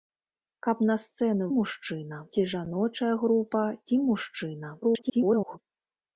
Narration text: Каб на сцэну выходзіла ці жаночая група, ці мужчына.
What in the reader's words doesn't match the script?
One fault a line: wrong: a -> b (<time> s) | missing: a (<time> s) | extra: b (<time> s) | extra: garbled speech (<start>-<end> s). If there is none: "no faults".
wrong: выходзіла -> мужчына (1.5 s)
extra: garbled speech (4.8-5.6 s)